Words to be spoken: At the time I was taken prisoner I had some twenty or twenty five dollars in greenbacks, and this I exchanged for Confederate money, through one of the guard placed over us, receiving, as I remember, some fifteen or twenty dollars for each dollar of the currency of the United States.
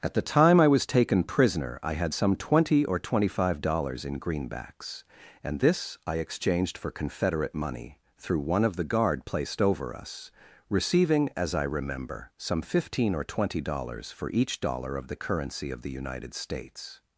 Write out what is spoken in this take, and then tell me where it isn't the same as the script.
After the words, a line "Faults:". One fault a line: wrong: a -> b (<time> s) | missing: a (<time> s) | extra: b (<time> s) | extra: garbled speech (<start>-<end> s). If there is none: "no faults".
At the time I was taken prisoner I had some twenty or twenty five dollars in greenbacks, and this I exchanged for Confederate money, through one of the guard placed over us, receiving, as I remember, some fifteen or twenty dollars for each dollar of the currency of the United States.
Faults:
no faults